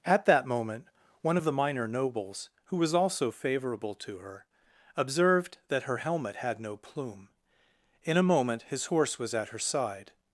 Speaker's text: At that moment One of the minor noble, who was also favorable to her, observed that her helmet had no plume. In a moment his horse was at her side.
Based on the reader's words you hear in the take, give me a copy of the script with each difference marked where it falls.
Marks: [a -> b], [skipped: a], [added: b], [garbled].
At that moment One of the minor [noble, -> nobles] who was also favorable to her, observed that her helmet had no plume. In a moment his horse was at her side.